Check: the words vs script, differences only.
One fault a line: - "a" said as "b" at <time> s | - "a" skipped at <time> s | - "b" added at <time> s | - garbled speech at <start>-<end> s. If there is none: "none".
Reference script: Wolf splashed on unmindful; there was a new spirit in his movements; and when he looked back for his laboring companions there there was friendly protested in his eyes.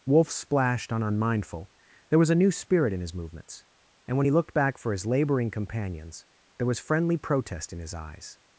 - "there" skipped at 6.7 s
- "protested" said as "protest" at 7.2 s